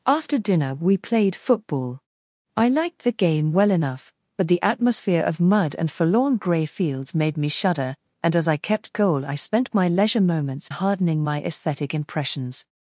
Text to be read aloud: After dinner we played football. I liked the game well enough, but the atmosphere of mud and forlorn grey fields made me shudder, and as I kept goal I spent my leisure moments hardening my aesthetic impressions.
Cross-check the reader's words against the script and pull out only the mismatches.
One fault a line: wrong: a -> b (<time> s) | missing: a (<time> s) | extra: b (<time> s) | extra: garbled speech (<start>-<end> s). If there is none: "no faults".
no faults